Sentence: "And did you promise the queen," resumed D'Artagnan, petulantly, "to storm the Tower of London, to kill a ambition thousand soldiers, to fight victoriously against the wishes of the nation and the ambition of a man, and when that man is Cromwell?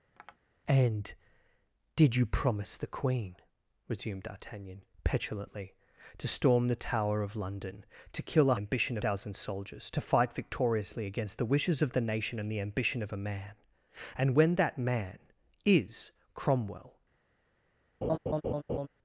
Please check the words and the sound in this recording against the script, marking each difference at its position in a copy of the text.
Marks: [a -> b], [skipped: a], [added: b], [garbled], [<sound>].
[tap] "And did you promise the queen," resumed D'Artagnan, petulantly, "to storm the Tower of London, to kill a ambition thousand soldiers, to fight victoriously against the wishes of the nation and the ambition of a man, and when that man is Cromwell? [laugh]